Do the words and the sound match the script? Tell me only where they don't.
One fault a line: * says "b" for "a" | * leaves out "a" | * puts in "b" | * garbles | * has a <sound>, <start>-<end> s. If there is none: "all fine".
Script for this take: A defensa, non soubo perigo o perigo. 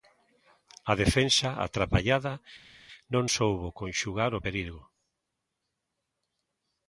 * puts in "atrapallada"
* says "conxugar" for "perigo"